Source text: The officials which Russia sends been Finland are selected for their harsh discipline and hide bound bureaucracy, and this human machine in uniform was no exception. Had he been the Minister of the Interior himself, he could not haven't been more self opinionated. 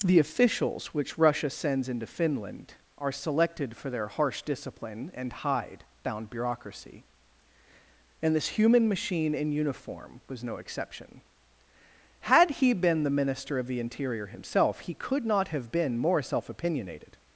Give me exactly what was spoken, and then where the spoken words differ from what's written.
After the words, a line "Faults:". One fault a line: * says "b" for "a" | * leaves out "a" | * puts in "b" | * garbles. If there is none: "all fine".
The officials which Russia sends into Finland are selected for their harsh discipline and hide bound bureaucracy, and this human machine in uniform was no exception. Had he been the Minister of the Interior himself, he could not have been more self opinionated.
Faults:
* says "into" for "been"
* says "have" for "haven't"